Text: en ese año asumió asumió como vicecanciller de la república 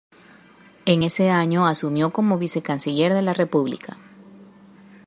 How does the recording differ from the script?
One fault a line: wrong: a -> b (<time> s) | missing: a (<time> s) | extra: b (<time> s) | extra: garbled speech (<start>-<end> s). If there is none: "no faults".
missing: asumió (2.1 s)